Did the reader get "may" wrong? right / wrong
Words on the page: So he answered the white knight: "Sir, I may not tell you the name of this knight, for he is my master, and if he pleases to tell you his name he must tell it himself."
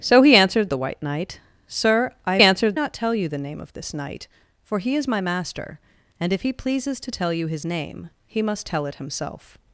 wrong